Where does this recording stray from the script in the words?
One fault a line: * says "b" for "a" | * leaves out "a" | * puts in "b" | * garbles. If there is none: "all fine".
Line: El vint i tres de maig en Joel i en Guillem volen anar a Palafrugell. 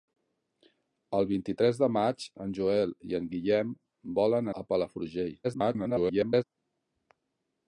* leaves out "anar"
* garbles